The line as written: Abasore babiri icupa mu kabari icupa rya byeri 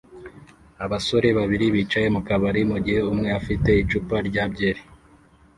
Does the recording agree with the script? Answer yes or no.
no